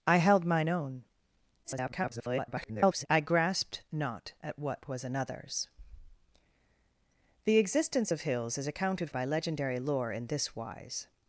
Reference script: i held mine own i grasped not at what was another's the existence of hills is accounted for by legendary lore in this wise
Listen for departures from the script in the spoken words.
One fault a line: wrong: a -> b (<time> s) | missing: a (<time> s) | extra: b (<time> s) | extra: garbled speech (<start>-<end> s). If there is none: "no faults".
extra: garbled speech (1.6-3.1 s)
missing: for (9.1 s)